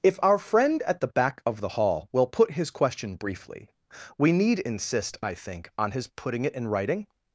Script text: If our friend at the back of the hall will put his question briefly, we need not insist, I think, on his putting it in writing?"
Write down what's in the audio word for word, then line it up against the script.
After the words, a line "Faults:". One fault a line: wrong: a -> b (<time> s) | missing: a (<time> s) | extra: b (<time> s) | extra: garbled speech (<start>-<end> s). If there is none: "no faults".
If our friend at the back of the hall will put his question briefly, we need insist, I think, on his putting it in writing?"
Faults:
missing: not (4.6 s)